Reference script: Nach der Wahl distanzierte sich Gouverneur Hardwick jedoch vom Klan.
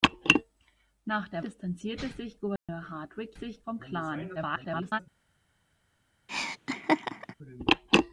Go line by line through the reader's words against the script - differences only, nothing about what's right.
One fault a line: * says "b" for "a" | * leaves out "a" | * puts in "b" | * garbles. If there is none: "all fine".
* leaves out "Wahl"
* says "sich" for "jedoch"
* garbles